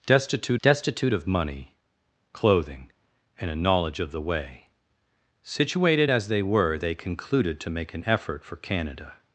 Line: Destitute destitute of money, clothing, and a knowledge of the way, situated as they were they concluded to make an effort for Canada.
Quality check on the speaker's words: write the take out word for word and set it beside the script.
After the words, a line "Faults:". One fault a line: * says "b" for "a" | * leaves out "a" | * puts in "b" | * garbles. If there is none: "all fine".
Destitute destitute of money, clothing, and a knowledge of the way, situated as they were they concluded to make an effort for Canada.
Faults:
all fine